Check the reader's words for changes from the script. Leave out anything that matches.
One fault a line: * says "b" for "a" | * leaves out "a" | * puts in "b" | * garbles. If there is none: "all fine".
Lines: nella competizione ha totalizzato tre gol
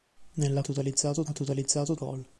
* says "totalizzato" for "competizione"
* leaves out "tre"